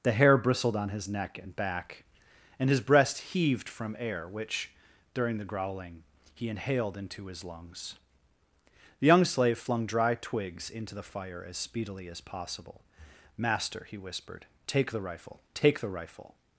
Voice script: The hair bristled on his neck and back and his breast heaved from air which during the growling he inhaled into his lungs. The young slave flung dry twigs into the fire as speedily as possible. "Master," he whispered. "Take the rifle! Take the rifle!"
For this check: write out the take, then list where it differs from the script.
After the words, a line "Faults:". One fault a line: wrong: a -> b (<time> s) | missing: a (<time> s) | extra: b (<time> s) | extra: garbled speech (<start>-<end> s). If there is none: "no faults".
The hair bristled on his neck and back and his breast heaved from air which during the growling he inhaled into his lungs. The young slave flung dry twigs into the fire as speedily as possible. "Master," he whispered. "Take the rifle! Take the rifle!"
Faults:
no faults